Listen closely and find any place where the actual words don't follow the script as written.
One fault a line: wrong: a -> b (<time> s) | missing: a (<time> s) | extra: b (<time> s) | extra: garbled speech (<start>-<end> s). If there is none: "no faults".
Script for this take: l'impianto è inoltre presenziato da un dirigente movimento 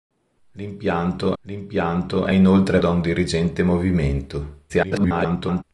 extra: l'impianto (1.4 s)
missing: presenziato (2.8 s)
extra: garbled speech (4.7-5.6 s)